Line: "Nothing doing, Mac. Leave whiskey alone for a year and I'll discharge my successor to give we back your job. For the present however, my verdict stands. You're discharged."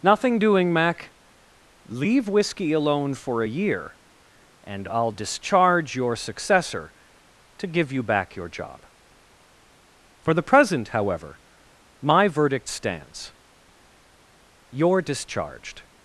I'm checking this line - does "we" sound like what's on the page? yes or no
no